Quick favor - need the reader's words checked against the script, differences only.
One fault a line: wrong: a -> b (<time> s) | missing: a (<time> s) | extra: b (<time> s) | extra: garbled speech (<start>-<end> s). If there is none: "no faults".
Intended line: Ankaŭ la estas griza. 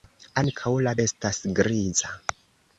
no faults